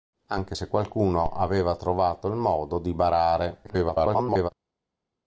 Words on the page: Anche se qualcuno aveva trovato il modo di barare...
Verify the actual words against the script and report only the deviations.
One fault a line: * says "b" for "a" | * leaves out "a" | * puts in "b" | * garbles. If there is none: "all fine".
* garbles